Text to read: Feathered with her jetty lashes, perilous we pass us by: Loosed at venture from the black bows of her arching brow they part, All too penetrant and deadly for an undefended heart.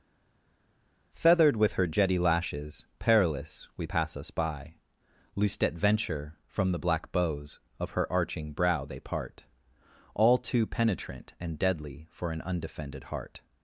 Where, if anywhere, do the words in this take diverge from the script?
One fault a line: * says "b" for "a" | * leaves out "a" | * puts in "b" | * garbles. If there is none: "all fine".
all fine